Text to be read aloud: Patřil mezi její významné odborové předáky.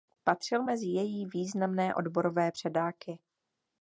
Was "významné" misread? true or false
false